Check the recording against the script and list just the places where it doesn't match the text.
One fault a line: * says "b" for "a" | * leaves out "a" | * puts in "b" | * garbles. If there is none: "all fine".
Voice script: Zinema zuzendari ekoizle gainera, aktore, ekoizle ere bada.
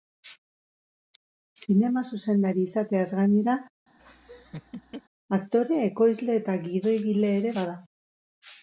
* says "izateaz" for "ekoizle"
* puts in "eta gidoigile"